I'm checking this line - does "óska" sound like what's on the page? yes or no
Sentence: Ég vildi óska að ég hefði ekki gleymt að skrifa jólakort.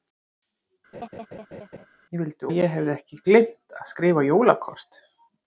no